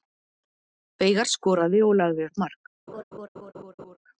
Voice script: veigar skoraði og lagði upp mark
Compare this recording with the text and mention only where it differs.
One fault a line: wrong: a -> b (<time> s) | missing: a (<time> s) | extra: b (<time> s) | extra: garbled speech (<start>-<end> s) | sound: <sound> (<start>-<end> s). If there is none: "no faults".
sound: laugh (2.9-4.0 s)